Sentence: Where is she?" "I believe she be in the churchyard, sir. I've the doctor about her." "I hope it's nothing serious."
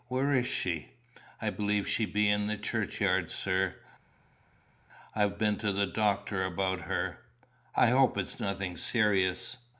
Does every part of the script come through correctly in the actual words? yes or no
no